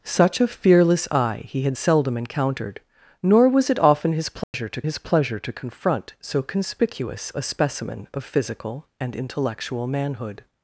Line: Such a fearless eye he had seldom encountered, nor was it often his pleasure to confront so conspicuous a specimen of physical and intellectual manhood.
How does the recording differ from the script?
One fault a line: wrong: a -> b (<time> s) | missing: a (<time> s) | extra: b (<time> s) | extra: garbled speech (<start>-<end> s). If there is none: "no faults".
extra: his pleasure to (4.8 s)